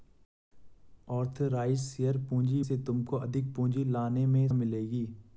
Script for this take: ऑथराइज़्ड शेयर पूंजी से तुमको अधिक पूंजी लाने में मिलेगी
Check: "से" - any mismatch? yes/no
no